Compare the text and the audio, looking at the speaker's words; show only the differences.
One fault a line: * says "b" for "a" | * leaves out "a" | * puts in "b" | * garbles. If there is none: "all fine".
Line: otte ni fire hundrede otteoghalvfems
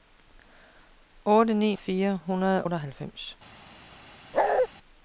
all fine